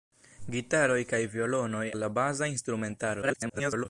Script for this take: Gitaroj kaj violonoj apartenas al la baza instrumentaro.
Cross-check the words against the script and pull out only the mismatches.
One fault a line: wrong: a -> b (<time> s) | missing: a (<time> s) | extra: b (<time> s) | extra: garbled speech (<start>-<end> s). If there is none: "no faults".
missing: apartenas (1.8 s)
extra: garbled speech (3.2-3.9 s)